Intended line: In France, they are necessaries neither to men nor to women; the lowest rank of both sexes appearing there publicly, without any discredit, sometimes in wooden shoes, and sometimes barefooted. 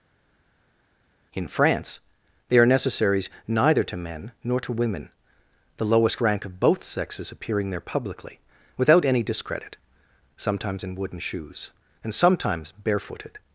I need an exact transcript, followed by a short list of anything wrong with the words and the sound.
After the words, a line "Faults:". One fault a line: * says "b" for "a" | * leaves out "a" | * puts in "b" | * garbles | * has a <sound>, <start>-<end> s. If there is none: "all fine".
In France, they are necessaries neither to men nor to women; the lowest rank of both sexes appearing there publicly, without any discredit, sometimes in wooden shoes, and sometimes barefooted.
Faults:
all fine